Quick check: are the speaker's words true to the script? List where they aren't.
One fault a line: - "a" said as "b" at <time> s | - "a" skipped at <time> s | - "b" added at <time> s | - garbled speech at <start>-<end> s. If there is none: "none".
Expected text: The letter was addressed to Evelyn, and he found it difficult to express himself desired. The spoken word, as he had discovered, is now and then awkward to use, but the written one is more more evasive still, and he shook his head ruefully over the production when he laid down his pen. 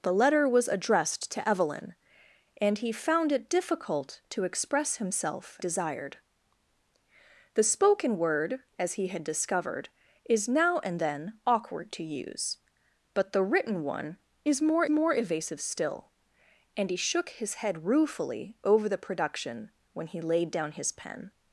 none